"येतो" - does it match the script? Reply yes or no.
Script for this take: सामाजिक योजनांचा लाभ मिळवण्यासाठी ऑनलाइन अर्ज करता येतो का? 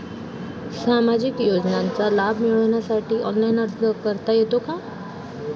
yes